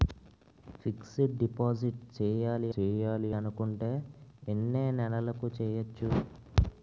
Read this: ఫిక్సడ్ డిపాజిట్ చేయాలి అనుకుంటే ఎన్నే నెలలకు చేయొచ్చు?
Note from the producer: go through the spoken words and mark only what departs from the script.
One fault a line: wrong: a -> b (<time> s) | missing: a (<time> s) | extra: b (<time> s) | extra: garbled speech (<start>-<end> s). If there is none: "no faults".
extra: చేయాలి (2.7 s)